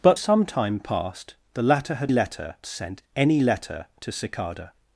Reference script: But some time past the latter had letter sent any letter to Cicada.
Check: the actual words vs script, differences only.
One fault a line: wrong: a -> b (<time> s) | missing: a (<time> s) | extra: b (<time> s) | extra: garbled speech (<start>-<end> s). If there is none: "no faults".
no faults